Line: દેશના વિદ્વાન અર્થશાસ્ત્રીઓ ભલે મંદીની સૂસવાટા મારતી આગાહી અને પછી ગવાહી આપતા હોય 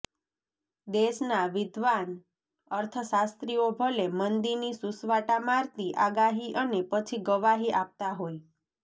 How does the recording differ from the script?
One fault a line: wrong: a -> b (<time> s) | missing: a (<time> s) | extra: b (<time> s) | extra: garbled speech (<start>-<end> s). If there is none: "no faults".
no faults